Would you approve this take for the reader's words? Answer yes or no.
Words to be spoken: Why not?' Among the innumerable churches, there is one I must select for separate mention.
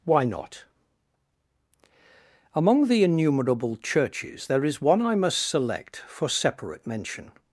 yes